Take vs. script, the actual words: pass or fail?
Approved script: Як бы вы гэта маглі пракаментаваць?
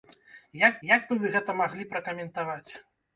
fail